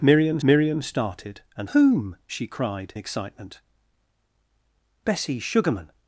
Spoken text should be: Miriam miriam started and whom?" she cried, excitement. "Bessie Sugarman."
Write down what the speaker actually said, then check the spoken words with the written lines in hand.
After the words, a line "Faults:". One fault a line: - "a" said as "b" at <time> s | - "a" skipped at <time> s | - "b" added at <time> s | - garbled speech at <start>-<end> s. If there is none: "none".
Miriam miriam started and whom?" she cried, excitement. "Bessie Sugarman."
Faults:
none